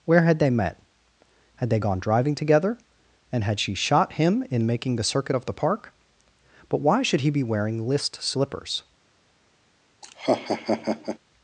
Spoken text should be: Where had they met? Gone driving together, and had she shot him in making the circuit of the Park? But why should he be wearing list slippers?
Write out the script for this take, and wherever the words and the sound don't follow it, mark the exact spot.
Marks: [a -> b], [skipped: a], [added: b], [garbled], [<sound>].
Where had they met? [added: Had they] Gone driving together, and had she shot him in making the circuit of the Park? But why should he be wearing list slippers? [laugh]